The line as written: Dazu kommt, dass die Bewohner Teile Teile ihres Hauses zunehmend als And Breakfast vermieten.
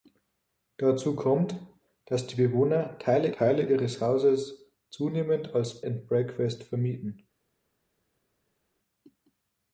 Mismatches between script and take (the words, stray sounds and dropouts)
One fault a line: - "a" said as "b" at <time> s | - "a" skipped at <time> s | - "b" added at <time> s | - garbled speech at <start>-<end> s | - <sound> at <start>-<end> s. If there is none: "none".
none